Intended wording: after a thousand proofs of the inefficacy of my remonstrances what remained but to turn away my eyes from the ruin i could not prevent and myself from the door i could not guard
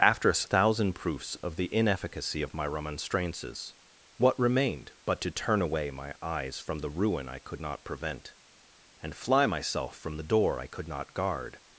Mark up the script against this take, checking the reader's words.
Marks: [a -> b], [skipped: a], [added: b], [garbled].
after a thousand proofs of the inefficacy of my remonstrances what remained but to turn away my eyes from the ruin i could not prevent and [added: fly] myself from the door i could not guard